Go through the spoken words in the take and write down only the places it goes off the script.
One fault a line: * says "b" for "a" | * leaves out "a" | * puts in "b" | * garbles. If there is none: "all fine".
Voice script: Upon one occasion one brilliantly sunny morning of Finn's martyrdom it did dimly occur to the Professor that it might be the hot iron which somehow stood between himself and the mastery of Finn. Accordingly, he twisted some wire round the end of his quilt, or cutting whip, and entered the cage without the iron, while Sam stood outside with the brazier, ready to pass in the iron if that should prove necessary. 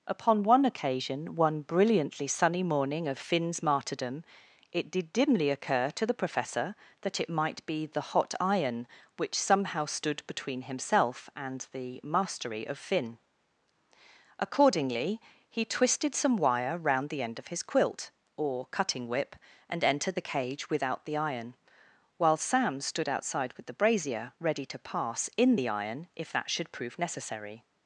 all fine